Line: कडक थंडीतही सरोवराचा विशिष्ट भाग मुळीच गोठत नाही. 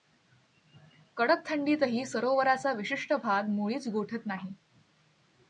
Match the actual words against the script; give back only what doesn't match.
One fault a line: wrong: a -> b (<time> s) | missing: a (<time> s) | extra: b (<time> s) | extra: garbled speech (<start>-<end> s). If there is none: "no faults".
no faults